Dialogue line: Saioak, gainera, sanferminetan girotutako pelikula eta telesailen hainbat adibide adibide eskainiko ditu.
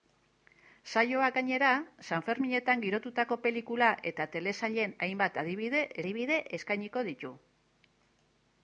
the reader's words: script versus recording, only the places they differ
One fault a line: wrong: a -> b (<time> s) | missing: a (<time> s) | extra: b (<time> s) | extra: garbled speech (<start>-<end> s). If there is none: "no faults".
no faults